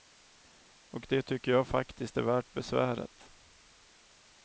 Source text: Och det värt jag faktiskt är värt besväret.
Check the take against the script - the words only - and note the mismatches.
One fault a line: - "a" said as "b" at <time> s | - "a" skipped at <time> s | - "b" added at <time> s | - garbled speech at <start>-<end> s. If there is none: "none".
- "värt" said as "tycker" at 1.2 s